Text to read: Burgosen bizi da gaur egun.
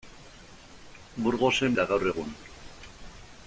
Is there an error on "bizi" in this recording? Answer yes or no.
yes